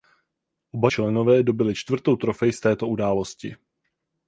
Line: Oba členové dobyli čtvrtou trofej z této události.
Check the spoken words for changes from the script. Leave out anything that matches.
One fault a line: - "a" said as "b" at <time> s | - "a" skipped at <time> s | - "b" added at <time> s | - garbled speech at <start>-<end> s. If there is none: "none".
none